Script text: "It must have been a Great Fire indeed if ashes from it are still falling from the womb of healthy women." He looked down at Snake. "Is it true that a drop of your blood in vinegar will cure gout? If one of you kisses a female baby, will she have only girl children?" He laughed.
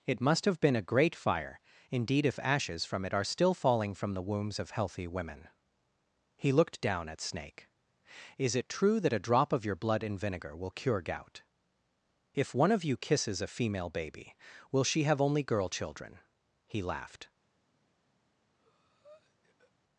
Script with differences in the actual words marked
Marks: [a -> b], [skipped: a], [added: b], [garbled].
"It must have been a Great Fire indeed if ashes from it are still falling from the [womb -> wombs] of healthy women." He looked down at Snake. "Is it true that a drop of your blood in vinegar will cure gout? If one of you kisses a female baby, will she have only girl children?" He laughed.